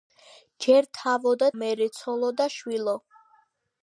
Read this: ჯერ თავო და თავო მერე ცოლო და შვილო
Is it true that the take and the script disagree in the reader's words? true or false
true